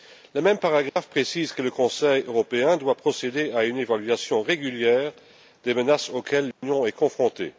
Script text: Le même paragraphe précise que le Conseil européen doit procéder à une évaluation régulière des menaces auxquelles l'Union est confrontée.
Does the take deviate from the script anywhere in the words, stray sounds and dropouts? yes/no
yes